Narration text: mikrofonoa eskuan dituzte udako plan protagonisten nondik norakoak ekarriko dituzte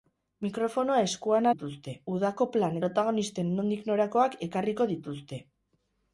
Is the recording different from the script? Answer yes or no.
no